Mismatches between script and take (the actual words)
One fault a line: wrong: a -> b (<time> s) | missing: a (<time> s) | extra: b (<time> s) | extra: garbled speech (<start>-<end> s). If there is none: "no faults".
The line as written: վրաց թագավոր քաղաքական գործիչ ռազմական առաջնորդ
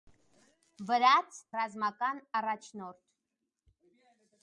missing: թագավոր քաղաքական գործիչ (1.4 s)